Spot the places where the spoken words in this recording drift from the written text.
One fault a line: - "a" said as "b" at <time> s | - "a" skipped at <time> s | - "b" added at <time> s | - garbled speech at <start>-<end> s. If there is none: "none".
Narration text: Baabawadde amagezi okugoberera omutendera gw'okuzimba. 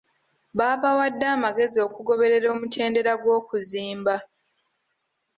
none